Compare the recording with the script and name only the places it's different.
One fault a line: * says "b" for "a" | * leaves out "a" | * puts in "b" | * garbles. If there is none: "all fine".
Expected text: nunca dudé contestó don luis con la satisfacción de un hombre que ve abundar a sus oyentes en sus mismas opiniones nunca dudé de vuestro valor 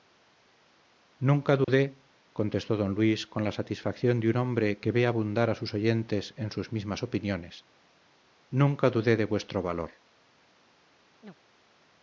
all fine